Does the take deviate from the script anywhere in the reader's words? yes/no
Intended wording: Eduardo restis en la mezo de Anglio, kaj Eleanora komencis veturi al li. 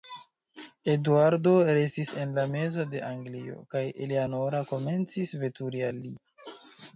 no